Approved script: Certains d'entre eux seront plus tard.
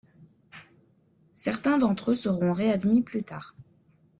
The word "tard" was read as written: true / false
true